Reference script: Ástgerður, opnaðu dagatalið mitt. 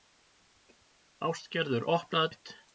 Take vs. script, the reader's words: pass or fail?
fail